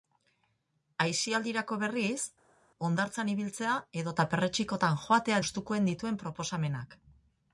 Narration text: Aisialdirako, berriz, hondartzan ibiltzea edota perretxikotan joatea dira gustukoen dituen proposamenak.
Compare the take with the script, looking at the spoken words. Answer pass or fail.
fail